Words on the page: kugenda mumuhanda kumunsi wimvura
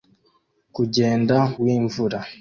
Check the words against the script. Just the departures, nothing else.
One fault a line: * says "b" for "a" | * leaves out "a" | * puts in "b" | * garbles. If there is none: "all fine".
* leaves out "mumuhanda kumunsi"